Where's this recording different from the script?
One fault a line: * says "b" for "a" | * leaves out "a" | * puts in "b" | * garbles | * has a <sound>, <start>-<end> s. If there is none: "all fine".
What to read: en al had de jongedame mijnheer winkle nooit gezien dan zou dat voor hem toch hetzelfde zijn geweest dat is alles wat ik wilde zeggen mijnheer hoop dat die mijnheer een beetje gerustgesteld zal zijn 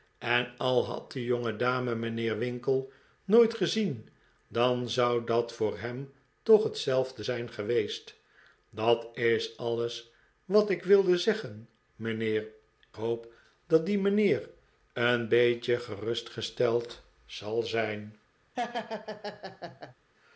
* has a laugh, 18.5-19.9 s